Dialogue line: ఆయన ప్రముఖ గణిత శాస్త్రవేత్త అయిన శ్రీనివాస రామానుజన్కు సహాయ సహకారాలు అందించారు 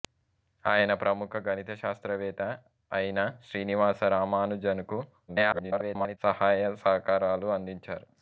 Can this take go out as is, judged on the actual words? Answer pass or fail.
fail